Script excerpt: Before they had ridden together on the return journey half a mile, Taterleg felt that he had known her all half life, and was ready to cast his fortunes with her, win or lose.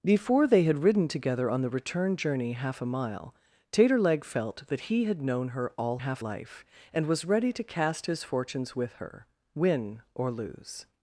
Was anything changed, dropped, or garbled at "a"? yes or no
no